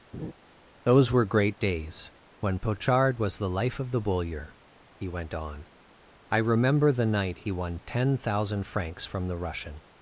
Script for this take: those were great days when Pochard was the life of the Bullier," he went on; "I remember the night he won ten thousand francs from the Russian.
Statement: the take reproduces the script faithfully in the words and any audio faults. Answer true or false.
false